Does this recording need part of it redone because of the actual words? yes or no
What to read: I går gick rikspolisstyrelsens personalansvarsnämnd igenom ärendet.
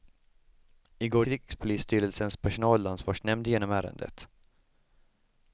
yes